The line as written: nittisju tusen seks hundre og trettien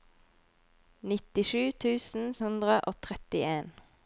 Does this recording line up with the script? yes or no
no